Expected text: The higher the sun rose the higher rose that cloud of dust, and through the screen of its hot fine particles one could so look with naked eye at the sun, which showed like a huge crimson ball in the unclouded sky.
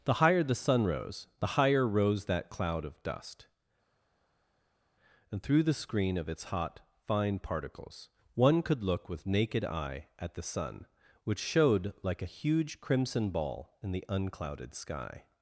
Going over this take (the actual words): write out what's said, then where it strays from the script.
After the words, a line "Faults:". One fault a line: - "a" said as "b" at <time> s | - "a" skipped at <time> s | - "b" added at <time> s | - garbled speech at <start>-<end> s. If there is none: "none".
The higher the sun rose the higher rose that cloud of dust, and through the screen of its hot fine particles one could look with naked eye at the sun, which showed like a huge crimson ball in the unclouded sky.
Faults:
- "so" skipped at 8.8 s